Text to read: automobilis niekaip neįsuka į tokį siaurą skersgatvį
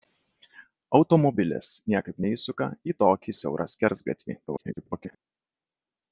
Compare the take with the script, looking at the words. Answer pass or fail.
fail